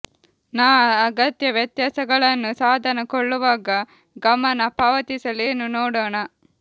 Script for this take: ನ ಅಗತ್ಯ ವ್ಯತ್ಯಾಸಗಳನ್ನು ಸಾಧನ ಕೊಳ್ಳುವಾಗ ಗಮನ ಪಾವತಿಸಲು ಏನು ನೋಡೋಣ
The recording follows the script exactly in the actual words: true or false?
true